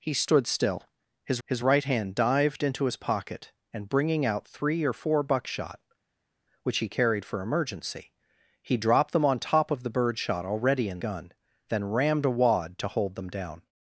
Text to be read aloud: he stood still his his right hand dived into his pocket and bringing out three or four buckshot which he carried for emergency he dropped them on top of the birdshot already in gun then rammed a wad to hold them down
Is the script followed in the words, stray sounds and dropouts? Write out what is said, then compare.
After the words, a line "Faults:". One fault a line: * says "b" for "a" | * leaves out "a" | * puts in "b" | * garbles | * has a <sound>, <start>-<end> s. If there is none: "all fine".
he stood still his his right hand dived into his pocket and bringing out three or four buckshot which he carried for emergency he dropped them on top of the birdshot already in gun then rammed a wad to hold them down
Faults:
all fine